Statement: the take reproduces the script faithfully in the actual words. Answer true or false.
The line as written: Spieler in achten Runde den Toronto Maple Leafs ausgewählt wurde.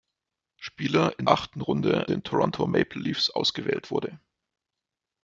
true